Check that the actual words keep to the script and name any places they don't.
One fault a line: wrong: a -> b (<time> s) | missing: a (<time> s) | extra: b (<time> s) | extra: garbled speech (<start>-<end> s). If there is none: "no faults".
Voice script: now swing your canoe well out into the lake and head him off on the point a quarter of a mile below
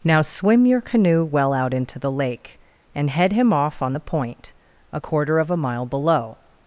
wrong: swing -> swim (0.2 s)